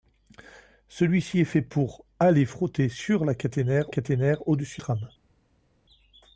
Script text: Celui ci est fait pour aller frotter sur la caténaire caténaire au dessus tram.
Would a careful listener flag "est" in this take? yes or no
no